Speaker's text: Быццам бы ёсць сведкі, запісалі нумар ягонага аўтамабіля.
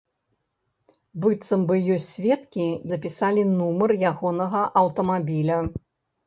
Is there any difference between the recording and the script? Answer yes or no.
no